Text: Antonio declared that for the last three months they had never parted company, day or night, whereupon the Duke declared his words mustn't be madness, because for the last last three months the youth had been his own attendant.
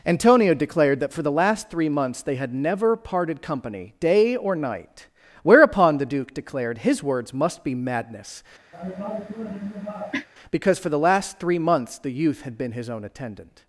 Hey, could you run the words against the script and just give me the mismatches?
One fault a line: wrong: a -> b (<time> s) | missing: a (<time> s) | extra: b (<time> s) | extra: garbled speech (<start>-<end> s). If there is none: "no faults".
wrong: mustn't -> must (7.3 s)
missing: last (11.4 s)